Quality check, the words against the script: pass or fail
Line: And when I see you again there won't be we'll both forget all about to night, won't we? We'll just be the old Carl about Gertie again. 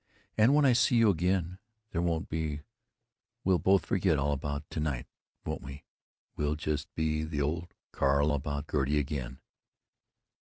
pass